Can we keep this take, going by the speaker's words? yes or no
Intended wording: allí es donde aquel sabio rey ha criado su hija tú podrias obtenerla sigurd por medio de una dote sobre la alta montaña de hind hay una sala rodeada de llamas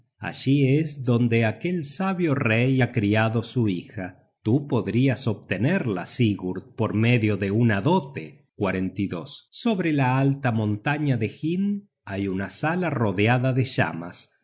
yes